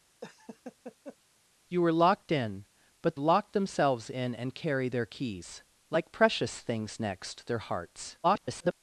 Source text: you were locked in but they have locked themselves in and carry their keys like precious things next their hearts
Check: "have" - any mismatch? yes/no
yes